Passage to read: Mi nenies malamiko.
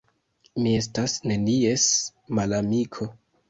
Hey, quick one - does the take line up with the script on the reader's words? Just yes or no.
no